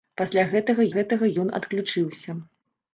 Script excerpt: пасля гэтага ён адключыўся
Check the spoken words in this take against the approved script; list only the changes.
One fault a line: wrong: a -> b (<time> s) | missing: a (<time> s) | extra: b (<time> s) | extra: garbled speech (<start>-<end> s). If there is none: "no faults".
extra: гэтага (1.0 s)